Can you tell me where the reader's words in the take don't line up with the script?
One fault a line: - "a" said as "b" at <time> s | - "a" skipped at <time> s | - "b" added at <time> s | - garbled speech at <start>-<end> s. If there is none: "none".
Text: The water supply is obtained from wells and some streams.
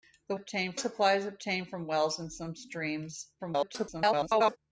- "water" said as "obtained" at 0.3 s
- garbled speech at 3.4-4.6 s